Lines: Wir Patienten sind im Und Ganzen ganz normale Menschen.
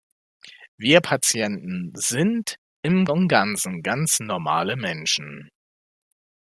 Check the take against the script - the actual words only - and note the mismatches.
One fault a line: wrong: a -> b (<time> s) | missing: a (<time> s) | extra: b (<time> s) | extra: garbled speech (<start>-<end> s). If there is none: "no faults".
no faults